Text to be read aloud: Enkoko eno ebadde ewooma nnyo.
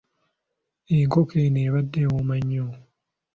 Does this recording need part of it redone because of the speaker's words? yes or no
no